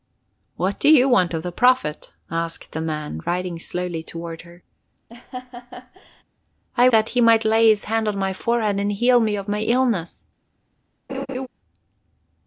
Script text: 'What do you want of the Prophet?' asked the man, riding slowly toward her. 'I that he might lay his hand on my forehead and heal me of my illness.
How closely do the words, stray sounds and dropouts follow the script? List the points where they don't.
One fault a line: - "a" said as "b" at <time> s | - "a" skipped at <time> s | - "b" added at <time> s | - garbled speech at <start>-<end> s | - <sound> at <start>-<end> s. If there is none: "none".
- laugh at 5.1-6.2 s
- laugh at 11.1-11.5 s